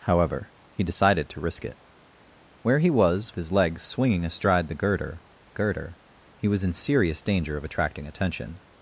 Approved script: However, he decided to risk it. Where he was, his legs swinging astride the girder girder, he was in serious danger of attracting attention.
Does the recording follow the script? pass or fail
pass